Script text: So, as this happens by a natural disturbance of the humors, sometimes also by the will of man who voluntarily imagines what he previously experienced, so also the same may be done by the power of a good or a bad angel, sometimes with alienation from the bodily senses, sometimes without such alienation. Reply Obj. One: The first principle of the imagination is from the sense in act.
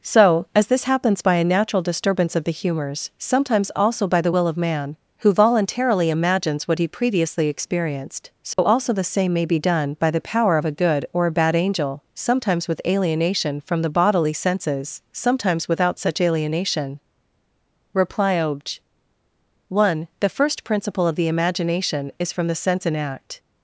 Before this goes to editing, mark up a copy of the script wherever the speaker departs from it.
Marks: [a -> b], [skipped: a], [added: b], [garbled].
So, as this happens by a natural disturbance of the humors, sometimes also by the will of man who voluntarily imagines what he previously experienced, so also the same may be done by the power of a good or a bad angel, sometimes with alienation from the bodily senses, sometimes without such alienation. Reply Obj. One: The first principle of the imagination is from the sense in act.